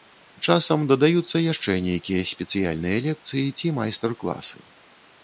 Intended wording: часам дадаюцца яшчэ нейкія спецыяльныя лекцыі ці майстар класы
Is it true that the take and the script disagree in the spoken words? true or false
false